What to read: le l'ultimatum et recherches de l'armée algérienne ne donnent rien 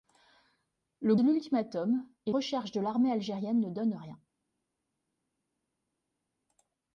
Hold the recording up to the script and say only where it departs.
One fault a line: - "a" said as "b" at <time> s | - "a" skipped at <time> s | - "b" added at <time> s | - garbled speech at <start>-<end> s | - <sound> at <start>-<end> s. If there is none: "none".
none